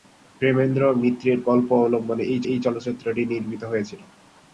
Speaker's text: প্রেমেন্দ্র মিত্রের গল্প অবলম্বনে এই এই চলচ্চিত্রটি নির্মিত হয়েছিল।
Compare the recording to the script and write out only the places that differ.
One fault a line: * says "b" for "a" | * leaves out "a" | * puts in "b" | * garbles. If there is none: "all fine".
all fine